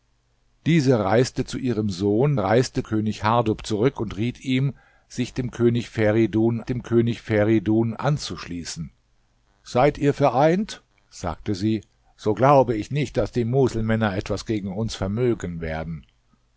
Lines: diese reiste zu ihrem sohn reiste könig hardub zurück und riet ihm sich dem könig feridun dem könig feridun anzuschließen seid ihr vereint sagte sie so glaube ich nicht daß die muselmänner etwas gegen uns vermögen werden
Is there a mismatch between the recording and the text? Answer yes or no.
no